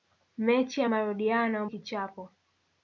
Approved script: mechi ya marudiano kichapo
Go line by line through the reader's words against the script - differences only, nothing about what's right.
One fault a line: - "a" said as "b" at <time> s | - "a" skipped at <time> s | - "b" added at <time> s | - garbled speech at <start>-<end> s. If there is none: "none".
none